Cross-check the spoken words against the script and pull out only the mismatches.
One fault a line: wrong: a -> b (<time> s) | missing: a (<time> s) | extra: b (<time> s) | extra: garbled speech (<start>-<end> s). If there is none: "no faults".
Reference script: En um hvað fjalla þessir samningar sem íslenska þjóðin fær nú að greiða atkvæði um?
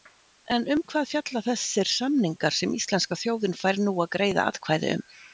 no faults